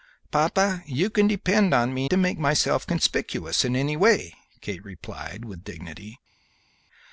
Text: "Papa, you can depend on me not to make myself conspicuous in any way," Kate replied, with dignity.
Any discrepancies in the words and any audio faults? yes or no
yes